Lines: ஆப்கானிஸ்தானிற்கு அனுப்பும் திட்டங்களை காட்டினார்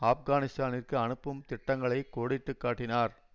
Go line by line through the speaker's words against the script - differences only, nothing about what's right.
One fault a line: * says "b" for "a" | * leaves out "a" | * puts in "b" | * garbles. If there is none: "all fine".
* puts in "கோடிட்டு"